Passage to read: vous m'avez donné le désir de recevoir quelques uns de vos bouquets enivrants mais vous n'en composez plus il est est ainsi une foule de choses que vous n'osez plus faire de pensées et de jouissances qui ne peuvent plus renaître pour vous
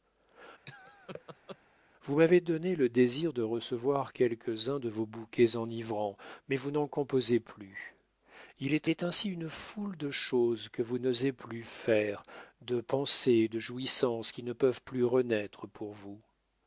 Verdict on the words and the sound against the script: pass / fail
fail